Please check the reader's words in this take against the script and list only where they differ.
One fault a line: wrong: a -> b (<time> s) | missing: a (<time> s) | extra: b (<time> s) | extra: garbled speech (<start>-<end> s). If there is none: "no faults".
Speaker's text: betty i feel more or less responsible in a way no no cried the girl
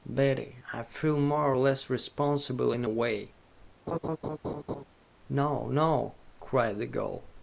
no faults